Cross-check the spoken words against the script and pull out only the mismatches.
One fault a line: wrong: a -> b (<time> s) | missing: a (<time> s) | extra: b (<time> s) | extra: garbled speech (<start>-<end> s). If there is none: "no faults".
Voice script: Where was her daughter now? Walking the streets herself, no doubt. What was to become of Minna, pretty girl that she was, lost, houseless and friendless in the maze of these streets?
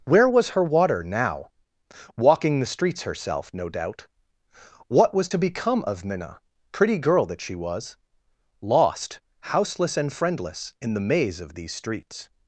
wrong: daughter -> water (0.6 s)